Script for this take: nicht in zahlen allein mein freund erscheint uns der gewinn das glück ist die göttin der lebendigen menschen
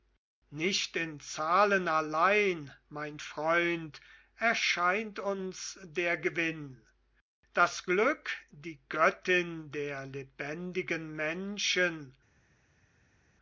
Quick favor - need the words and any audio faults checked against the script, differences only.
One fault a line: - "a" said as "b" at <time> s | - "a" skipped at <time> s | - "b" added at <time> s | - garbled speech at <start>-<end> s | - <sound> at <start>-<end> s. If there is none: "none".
- "ist" skipped at 8.3 s